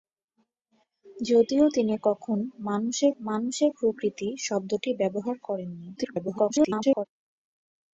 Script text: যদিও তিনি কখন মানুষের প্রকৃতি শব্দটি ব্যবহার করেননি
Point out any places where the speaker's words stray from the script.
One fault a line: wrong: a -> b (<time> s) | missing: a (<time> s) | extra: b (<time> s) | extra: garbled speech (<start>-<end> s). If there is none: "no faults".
extra: মানুষের (3.2 s)
extra: garbled speech (6.0-7.1 s)